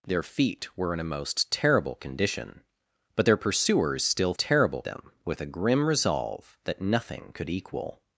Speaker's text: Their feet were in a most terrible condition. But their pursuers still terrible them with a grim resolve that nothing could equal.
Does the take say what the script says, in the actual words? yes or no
yes